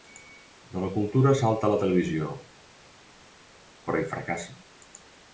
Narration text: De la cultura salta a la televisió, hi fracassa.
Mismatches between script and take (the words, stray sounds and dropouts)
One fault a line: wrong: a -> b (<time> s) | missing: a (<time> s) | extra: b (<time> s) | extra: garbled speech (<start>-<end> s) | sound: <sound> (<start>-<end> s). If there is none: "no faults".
extra: però (3.9 s)